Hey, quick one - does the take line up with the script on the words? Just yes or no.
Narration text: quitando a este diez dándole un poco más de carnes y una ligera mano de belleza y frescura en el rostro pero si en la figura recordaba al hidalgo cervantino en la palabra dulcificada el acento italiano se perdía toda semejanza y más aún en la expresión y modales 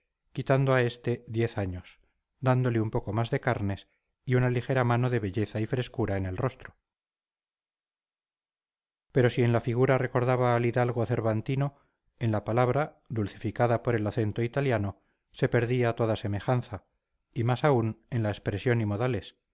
no